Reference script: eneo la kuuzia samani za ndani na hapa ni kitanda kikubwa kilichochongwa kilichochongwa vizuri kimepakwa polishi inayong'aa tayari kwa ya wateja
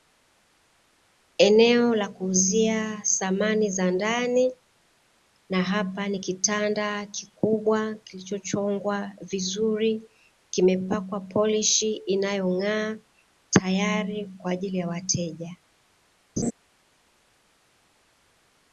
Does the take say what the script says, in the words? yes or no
no